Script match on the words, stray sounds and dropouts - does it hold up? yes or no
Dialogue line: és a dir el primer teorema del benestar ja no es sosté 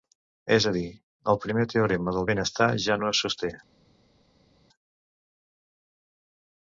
yes